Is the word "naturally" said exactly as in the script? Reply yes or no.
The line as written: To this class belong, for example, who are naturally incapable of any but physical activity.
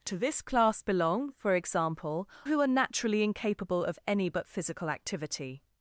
yes